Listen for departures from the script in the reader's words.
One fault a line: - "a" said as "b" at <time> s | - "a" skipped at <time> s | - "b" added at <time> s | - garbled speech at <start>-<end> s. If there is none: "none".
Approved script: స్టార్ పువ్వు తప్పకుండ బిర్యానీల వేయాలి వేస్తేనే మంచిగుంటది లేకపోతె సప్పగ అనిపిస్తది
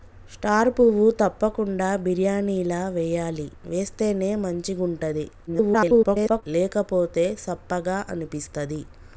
- garbled speech at 5.5-6.4 s